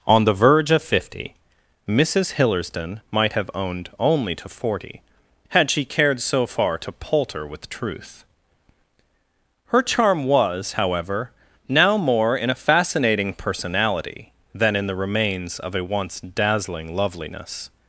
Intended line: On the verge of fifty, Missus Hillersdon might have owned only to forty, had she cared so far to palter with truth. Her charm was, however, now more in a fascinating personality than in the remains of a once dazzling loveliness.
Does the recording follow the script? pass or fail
pass